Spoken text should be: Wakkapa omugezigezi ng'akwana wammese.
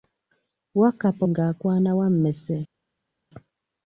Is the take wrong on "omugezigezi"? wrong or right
wrong